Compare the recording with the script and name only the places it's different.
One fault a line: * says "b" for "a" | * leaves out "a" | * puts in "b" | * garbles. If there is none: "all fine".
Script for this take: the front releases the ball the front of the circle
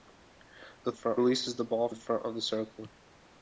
all fine